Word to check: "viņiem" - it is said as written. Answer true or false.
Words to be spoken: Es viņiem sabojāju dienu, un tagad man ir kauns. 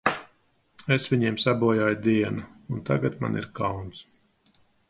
true